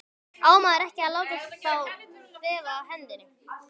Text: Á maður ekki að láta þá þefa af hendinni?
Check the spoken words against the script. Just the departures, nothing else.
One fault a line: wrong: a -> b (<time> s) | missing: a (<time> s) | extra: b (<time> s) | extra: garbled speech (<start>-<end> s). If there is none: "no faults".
no faults